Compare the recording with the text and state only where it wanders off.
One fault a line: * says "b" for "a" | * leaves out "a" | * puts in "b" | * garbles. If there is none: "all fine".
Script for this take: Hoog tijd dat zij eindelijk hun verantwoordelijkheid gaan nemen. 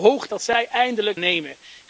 * leaves out "tijd"
* leaves out "hun verantwoordelijkheid gaan"